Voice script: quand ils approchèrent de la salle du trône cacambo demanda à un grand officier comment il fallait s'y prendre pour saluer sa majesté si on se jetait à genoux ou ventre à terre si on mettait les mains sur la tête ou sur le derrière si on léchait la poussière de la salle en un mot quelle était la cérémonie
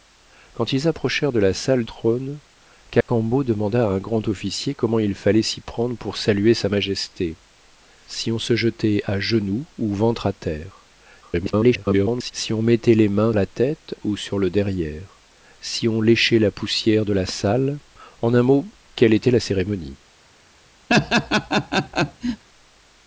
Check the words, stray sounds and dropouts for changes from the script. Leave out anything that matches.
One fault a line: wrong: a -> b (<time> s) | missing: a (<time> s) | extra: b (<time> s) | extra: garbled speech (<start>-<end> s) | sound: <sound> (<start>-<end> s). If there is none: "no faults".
missing: du (1.8 s)
sound: dropout (3.0-3.1 s)
extra: garbled speech (11.2-12.3 s)
missing: sur (13.3 s)
sound: laugh (20.9-22.4 s)